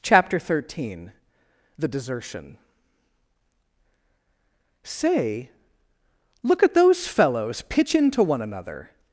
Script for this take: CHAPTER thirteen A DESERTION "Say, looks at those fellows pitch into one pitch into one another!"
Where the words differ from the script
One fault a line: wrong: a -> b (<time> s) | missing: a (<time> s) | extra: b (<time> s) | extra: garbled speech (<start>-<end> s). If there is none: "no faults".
wrong: A -> THE (1.8 s)
wrong: looks -> look (6.4 s)
missing: pitch into one (8.4 s)